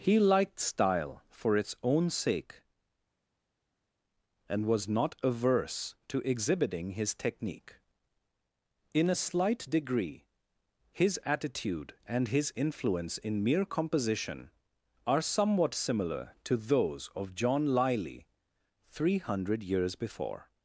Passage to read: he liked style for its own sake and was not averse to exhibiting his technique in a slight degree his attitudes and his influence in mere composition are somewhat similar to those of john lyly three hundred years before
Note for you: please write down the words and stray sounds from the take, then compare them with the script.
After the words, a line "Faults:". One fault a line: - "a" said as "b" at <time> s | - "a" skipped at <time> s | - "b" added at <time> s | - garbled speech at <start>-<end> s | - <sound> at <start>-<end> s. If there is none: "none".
he liked style for its own sake and was not averse to exhibiting his technique in a slight degree his attitude and his influence in mere composition are somewhat similar to those of john lyly three hundred years before
Faults:
- "attitudes" said as "attitude" at 11.2 s